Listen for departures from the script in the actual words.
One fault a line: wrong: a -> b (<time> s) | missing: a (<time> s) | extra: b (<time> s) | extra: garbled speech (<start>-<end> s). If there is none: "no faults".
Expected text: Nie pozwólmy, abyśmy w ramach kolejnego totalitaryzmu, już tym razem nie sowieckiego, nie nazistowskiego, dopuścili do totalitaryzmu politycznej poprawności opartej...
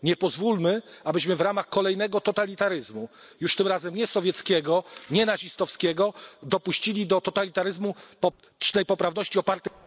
no faults